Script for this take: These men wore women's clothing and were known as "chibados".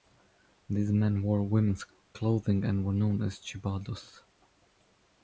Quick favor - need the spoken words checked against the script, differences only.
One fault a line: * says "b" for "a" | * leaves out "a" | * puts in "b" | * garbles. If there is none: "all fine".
all fine